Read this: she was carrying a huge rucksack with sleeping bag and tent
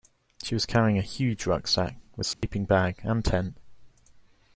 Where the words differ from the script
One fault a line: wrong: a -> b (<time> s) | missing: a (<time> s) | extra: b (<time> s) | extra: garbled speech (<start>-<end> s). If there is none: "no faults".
no faults